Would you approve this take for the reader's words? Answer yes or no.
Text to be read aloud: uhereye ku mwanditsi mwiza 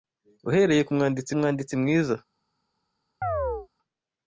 no